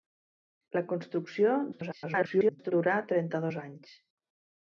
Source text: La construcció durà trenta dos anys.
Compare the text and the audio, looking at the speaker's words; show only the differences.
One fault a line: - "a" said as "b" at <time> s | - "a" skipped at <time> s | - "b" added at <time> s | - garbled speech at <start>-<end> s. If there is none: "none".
- garbled speech at 1.7-2.7 s